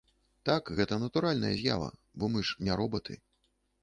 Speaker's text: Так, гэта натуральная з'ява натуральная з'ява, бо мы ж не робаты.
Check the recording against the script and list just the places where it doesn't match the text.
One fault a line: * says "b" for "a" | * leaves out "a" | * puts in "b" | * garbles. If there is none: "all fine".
* leaves out "натуральная з'ява"